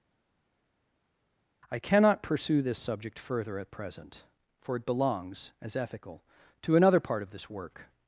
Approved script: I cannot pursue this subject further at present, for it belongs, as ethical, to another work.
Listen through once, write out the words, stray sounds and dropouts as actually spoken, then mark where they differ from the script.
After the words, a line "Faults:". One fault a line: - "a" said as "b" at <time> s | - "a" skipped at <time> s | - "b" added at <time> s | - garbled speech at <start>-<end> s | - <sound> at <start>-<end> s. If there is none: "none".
I cannot pursue this subject further at present, for it belongs, as ethical, to another part of this work.
Faults:
- "part of this" added at 7.0 s